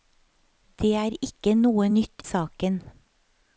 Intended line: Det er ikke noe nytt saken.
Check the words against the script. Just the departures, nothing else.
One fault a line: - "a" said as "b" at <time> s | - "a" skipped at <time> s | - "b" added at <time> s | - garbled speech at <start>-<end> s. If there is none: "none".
none